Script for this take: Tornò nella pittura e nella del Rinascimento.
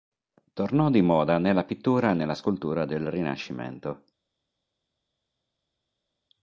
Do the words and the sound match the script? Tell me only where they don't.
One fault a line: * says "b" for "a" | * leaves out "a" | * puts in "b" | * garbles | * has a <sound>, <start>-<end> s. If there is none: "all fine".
* puts in "di moda"
* puts in "scultura"